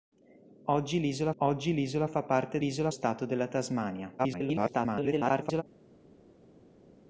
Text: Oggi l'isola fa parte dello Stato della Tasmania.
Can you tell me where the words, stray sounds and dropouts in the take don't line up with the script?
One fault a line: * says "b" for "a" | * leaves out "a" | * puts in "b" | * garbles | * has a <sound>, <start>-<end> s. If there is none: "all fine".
* puts in "oggi l'isola"
* says "l'isola" for "dello"
* garbles